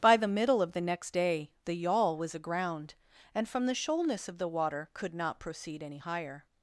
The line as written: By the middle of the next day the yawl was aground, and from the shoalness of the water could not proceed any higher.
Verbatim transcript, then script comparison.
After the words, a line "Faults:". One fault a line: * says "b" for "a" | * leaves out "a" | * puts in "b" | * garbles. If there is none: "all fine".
By the middle of the next day the yawl was aground, and from the shoalness of the water could not proceed any higher.
Faults:
all fine